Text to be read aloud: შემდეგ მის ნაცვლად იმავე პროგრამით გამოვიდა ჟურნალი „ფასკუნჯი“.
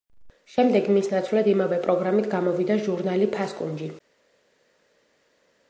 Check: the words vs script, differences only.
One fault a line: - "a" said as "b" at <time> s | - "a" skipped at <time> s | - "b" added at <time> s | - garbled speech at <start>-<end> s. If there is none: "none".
none